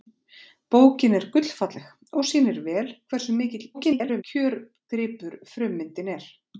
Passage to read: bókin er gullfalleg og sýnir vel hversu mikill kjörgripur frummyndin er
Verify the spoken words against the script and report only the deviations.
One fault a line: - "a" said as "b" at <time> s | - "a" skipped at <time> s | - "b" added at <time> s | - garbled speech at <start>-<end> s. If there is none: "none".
- garbled speech at 3.7-4.2 s